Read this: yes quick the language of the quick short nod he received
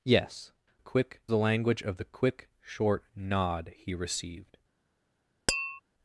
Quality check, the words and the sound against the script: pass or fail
fail